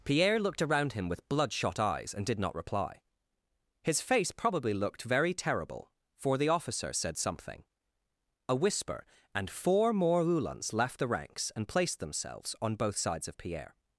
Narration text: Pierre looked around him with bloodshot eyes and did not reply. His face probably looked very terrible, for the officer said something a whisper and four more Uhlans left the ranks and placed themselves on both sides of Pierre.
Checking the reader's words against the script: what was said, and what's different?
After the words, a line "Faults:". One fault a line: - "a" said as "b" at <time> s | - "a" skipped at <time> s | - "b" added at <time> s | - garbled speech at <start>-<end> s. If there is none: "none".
Pierre looked around him with bloodshot eyes and did not reply. His face probably looked very terrible, for the officer said something a whisper and four more Uhlans left the ranks and placed themselves on both sides of Pierre.
Faults:
none